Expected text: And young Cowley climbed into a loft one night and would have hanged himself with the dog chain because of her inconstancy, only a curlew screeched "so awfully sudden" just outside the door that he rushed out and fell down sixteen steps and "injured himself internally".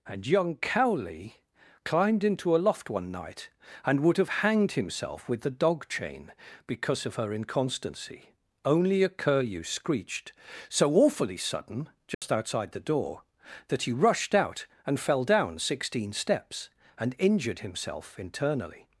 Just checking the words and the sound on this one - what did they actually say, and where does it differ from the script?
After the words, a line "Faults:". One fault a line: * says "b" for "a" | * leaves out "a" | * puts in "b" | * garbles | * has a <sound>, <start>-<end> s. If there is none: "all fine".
And young Cowley climbed into a loft one night and would have hanged himself with the dog chain because of her inconstancy, only a curlew screeched "so awfully sudden" just outside the door that he rushed out and fell down sixteen steps and "injured himself internally".
Faults:
* has a dropout, 12.1-12.2 s